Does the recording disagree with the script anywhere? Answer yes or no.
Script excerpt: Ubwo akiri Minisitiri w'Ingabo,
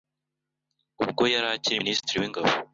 yes